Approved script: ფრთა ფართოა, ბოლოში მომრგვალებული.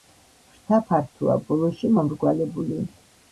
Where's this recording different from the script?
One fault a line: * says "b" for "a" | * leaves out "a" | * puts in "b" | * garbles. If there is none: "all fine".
all fine